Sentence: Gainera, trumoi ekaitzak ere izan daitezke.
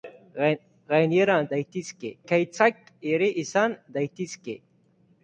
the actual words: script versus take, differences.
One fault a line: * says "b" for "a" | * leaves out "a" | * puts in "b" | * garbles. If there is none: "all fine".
* says "daitezke" for "trumoi"